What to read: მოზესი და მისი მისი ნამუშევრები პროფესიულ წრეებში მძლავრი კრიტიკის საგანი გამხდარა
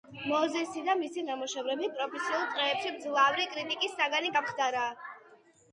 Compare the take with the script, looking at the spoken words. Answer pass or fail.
fail